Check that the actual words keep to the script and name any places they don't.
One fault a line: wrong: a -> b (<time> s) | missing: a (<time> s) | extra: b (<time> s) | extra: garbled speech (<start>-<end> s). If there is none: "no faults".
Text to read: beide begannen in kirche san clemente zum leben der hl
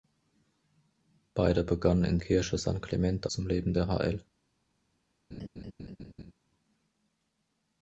no faults